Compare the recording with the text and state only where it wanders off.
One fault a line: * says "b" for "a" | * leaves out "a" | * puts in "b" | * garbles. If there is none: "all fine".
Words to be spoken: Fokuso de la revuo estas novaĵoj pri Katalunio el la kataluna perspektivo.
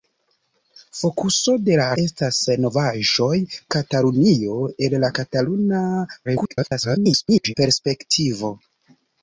* leaves out "revuo"
* leaves out "pri"
* garbles